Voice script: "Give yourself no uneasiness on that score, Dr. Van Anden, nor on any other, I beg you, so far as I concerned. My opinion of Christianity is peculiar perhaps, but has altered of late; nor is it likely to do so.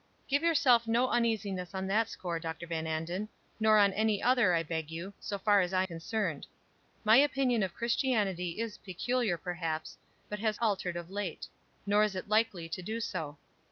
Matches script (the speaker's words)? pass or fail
pass